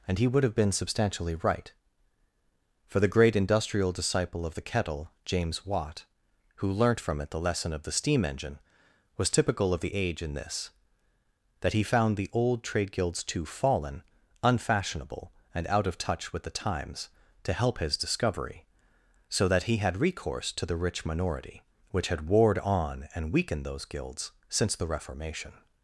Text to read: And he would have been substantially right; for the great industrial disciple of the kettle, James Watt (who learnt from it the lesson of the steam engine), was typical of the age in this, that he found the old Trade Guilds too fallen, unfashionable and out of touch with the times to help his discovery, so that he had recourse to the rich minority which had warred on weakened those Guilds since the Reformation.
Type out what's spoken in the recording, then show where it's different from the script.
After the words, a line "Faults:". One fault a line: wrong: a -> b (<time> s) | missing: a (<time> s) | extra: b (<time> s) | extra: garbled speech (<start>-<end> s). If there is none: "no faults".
And he would have been substantially right; for the great industrial disciple of the kettle, James Watt (who learnt from it the lesson of the steam engine), was typical of the age in this, that he found the old Trade Guilds too fallen, unfashionable and out of touch with the times to help his discovery, so that he had recourse to the rich minority which had warred on and weakened those Guilds since the Reformation.
Faults:
extra: and (23.1 s)